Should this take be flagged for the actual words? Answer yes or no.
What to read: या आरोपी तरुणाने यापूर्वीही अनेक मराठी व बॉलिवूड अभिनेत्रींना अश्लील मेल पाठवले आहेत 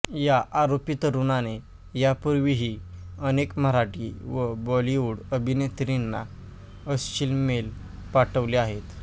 no